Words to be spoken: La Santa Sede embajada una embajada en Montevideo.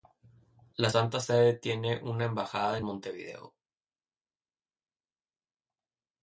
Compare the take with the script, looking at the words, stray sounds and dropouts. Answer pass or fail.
fail